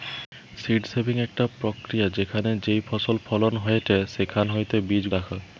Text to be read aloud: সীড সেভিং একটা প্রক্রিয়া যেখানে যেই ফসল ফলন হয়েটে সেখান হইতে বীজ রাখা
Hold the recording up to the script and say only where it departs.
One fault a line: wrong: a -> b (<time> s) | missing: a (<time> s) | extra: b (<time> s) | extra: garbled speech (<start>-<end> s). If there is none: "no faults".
no faults